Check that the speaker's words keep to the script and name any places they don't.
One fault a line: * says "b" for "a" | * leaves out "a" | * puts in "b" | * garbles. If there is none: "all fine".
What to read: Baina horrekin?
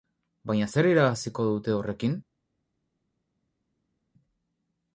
* puts in "zer irabaziko dute"